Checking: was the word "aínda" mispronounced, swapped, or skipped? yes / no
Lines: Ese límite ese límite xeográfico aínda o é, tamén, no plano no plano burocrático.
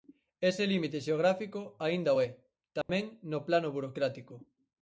no